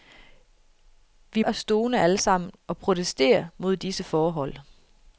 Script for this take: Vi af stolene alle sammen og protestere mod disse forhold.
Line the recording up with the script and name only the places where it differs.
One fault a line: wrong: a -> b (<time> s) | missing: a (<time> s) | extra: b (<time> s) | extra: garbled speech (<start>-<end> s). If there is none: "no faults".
no faults